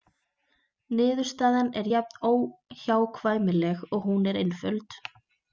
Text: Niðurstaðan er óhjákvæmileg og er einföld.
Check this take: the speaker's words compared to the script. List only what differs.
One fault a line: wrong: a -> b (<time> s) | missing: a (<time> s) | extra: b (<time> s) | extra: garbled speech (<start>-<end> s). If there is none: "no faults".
extra: jafn (1.9 s)
extra: hún (4.1 s)